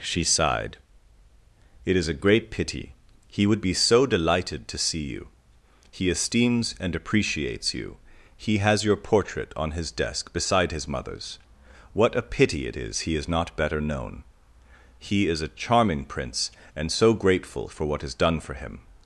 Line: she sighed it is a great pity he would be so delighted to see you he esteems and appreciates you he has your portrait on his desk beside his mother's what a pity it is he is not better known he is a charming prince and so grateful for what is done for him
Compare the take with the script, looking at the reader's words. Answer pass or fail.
pass